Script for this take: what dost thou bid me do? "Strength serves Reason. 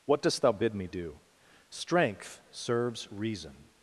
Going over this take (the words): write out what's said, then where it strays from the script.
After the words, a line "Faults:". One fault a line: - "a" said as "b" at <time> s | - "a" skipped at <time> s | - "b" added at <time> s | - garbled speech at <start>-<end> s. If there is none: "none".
what dost thou bid me do? "Strength serves Reason.
Faults:
none